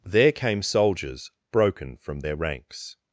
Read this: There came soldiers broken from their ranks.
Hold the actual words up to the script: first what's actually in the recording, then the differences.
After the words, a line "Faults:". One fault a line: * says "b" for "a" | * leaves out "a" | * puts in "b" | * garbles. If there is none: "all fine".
There came soldiers broken from their ranks.
Faults:
all fine